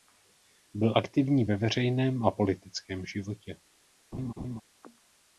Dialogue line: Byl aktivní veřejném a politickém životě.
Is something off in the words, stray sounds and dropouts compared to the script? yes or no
yes